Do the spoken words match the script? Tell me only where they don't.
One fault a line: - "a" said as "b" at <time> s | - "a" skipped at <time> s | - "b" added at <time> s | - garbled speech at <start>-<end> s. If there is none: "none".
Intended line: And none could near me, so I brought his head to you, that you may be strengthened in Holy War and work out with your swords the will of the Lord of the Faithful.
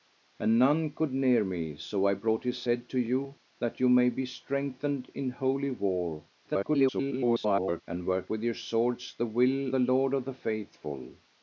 - garbled speech at 6.4-7.8 s
- "out" skipped at 8.3 s
- "of" skipped at 9.7 s